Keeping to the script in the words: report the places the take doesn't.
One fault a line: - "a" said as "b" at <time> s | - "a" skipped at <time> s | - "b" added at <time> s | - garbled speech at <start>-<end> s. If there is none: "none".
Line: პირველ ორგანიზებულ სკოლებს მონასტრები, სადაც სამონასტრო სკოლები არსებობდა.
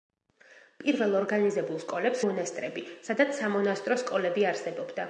none